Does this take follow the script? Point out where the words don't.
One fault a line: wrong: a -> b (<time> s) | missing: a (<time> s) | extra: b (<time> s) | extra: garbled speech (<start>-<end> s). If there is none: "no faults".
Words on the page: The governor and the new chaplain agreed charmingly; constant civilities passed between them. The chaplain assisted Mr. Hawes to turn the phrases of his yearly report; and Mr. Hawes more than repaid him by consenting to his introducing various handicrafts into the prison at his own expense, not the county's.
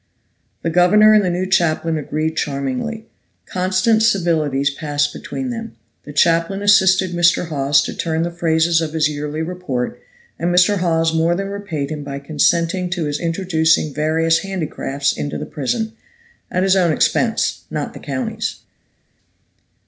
no faults